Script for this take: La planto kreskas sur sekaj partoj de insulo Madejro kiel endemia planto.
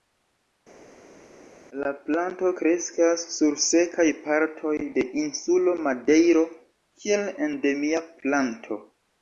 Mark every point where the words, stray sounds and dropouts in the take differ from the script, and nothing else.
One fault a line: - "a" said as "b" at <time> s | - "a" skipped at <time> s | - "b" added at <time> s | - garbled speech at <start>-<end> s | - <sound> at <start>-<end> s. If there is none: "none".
none